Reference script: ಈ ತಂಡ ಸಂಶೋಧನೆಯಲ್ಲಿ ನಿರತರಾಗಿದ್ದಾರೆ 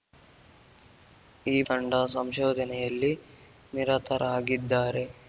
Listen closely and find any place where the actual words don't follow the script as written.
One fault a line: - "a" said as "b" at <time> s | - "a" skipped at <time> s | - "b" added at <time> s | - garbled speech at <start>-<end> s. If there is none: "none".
none